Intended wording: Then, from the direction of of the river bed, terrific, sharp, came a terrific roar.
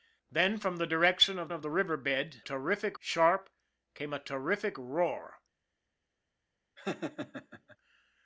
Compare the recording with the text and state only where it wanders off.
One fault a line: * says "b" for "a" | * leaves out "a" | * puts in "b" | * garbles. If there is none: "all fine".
all fine